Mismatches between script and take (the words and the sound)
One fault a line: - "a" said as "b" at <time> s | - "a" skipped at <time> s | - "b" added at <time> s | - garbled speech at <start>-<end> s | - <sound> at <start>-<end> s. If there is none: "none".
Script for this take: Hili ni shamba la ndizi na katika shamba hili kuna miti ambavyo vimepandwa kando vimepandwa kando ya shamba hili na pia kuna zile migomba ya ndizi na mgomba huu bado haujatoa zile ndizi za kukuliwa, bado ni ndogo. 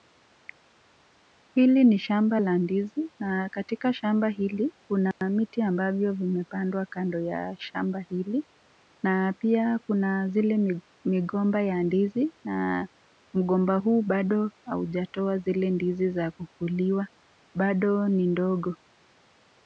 - dropout at 5.1-5.2 s
- "vimepandwa kando" skipped at 7.2 s